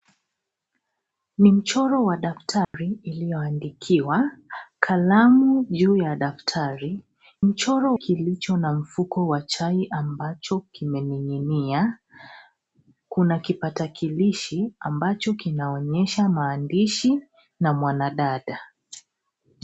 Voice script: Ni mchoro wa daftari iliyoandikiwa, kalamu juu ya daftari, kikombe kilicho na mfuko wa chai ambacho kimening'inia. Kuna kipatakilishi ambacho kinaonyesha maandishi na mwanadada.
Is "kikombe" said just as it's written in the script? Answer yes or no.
no